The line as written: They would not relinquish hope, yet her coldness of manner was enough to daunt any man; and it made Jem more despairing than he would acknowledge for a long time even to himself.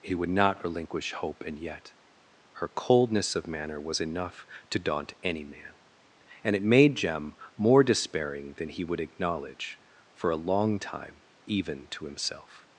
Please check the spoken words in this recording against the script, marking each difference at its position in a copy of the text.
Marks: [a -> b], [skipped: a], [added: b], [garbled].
[They -> He] would not relinquish hope, [added: and] yet her coldness of manner was enough to daunt any man; and it made Jem more despairing than he would acknowledge for a long time even to himself.